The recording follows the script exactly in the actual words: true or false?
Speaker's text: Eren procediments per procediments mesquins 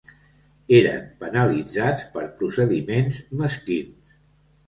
false